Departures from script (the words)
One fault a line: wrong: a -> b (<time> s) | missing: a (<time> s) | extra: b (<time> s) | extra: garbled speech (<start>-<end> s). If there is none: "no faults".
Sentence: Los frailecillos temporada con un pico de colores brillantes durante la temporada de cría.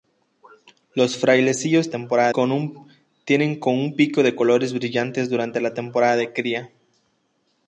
no faults